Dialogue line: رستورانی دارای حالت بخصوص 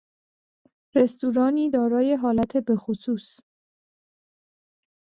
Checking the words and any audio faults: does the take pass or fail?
pass